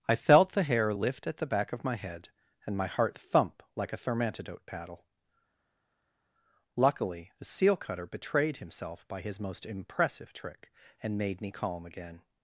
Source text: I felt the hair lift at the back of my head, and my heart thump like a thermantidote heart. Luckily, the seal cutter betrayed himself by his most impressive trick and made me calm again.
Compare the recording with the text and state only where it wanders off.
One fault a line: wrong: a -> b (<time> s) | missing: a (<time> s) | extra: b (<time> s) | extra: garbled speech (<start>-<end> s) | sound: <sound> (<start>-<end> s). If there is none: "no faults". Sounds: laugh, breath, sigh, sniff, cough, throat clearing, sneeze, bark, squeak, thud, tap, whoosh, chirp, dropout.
wrong: heart -> paddle (4.7 s)